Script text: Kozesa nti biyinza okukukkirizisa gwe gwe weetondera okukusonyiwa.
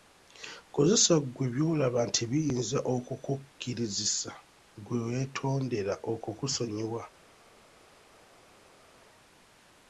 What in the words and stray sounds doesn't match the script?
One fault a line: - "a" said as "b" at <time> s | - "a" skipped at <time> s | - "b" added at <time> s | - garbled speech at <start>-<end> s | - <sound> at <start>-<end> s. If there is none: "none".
- "ggwe by'olaba" added at 1.2 s
- "gwe" skipped at 5.0 s